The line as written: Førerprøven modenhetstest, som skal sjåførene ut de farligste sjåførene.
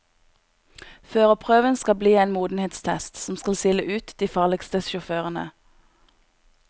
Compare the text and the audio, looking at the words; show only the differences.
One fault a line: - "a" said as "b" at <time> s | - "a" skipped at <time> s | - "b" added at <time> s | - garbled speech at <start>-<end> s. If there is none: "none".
- "skal bli en" added at 1.8 s
- "sjåførene" said as "sile" at 3.5 s